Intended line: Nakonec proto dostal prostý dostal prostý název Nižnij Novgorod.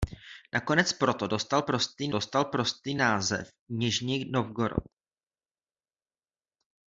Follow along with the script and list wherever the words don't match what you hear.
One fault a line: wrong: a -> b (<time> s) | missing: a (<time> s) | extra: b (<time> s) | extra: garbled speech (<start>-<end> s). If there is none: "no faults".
no faults